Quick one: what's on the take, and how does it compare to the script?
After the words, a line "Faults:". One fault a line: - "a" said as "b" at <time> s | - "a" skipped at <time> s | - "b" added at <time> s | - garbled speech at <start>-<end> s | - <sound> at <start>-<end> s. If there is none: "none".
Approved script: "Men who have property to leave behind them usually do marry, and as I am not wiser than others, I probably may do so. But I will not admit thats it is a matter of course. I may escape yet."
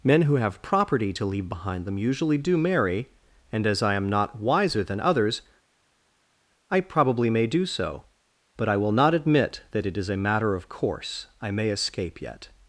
"Men who have property to leave behind them usually do marry, and as I am not wiser than others, I probably may do so. But I will not admit that it is a matter of course. I may escape yet."
Faults:
- "thats" said as "that" at 9.7 s